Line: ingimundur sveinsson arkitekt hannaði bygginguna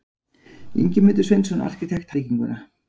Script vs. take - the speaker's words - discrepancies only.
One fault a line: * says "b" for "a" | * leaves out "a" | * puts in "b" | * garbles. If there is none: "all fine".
* leaves out "hannaði"